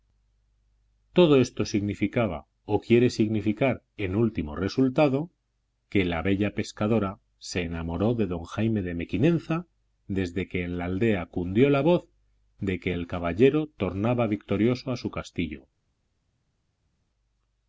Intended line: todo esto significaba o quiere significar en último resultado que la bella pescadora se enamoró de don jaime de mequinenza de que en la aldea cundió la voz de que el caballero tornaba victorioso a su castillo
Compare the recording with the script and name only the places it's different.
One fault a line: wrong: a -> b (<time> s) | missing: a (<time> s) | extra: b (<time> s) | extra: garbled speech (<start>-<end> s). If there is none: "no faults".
wrong: de -> desde (10.1 s)